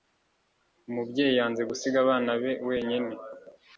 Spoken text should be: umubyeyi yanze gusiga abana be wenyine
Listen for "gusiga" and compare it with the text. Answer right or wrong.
right